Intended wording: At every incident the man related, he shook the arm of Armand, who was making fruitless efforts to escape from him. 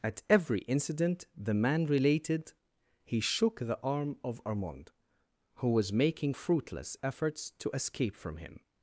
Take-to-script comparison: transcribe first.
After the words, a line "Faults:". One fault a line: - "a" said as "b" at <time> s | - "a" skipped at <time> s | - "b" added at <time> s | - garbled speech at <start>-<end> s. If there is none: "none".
At every incident the man related, he shook the arm of Armand, who was making fruitless efforts to escape from him.
Faults:
none